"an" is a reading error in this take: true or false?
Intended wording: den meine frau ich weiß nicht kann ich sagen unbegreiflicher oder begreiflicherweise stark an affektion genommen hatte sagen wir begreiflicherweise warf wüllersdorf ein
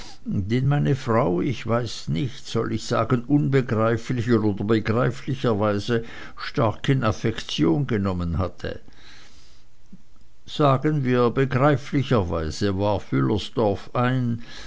true